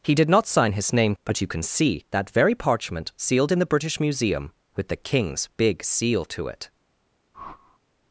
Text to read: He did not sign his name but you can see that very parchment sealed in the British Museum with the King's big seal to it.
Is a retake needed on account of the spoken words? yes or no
no